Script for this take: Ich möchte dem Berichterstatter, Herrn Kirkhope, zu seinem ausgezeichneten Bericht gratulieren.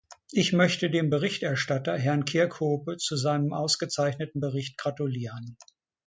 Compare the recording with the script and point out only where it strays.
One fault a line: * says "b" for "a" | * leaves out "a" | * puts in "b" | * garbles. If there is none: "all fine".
all fine